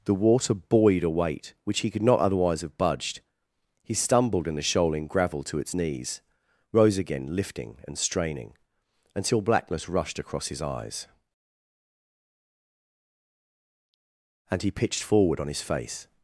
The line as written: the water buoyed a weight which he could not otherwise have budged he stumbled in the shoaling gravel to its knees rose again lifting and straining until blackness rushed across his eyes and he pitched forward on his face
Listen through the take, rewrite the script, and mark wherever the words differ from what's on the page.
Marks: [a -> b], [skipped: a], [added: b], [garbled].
the water buoyed a weight which he could not otherwise have budged he stumbled in the shoaling gravel to its knees rose again lifting and straining until blackness rushed across his eyes and he pitched forward on his face